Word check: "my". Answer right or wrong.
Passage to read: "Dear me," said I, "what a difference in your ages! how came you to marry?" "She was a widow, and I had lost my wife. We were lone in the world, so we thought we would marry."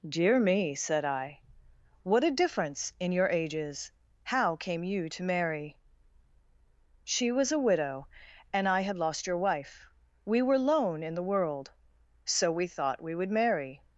wrong